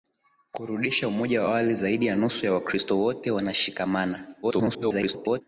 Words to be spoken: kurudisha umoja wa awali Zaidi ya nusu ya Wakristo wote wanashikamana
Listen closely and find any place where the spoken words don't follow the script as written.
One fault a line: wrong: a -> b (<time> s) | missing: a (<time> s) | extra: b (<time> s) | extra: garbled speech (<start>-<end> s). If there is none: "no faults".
extra: garbled speech (4.4-5.4 s)